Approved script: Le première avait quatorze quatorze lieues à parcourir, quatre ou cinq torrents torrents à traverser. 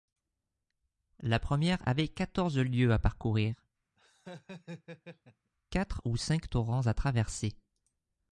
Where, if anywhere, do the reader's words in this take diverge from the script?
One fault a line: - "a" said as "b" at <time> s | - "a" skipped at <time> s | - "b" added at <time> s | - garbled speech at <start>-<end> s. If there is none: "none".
- "Le" said as "La" at 1.2 s
- "quatorze" skipped at 2.6 s
- "torrents" skipped at 6.9 s